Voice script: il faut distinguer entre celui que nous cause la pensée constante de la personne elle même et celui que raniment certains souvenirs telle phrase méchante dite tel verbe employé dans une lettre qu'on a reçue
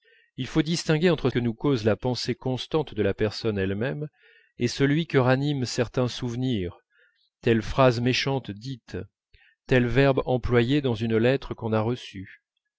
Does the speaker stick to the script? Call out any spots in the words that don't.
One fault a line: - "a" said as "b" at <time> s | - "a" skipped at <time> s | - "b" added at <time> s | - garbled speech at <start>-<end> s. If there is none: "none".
- "celui" skipped at 1.3 s